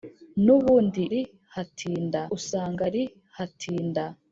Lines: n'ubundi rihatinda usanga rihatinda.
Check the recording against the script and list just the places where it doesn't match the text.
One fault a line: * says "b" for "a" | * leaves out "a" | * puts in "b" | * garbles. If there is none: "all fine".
all fine